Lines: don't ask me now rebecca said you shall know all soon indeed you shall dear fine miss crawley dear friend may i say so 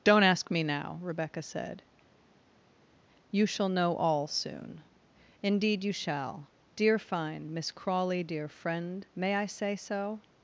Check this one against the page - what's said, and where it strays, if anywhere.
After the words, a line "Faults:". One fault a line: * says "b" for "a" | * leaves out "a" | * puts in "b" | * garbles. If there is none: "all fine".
don't ask me now rebecca said you shall know all soon indeed you shall dear fine miss crawley dear friend may i say so
Faults:
all fine